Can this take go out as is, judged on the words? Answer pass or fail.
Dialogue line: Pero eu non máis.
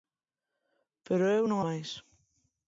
pass